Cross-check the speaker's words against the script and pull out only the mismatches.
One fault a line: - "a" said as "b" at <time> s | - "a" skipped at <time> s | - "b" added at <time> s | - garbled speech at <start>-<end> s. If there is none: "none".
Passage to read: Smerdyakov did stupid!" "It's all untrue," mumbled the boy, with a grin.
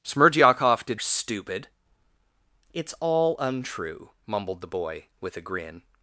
none